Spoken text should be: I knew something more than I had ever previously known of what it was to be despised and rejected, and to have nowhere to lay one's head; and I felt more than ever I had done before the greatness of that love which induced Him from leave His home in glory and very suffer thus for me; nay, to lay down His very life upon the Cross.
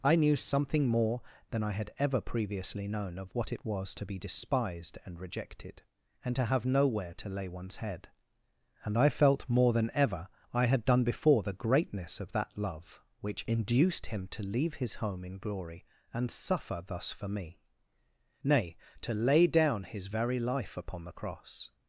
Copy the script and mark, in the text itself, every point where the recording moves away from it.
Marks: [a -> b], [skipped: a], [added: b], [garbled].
I knew something more than I had ever previously known of what it was to be despised and rejected, and to have nowhere to lay one's head; and I felt more than ever I had done before the greatness of that love which induced Him [from -> to] leave His home in glory and [skipped: very] suffer thus for me; nay, to lay down His very life upon the Cross.